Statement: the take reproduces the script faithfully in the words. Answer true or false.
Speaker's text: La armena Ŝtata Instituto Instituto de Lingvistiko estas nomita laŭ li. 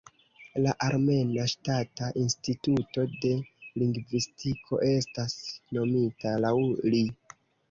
false